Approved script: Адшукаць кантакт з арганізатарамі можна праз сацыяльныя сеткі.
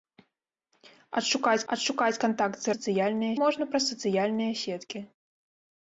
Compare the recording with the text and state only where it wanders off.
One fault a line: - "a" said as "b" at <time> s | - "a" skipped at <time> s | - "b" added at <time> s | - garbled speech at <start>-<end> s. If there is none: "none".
- "адшукаць" added at 1.7 s
- "арганізатарамі" said as "сацыяльныя" at 2.8 s